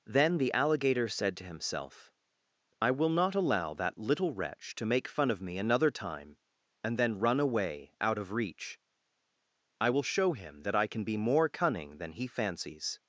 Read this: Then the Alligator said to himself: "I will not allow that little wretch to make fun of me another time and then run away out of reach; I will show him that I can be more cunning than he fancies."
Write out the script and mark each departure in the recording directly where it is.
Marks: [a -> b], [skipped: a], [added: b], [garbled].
Then the Alligator said to himself: "I will not allow that little wretch to make fun of me another time and then run away out of reach; I will show him that I can be more cunning than he fancies."